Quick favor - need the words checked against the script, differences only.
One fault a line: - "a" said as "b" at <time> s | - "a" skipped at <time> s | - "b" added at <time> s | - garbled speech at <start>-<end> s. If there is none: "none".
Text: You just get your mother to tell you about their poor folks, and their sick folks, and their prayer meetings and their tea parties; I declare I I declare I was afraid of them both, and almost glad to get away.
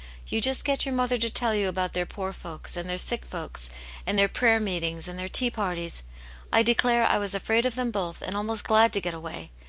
- "I declare I" skipped at 7.2 s